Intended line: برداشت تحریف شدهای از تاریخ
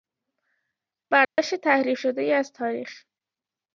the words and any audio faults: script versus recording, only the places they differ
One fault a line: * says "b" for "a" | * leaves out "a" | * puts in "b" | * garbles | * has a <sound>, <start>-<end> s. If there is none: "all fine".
* has a dropout, 1.2-1.4 s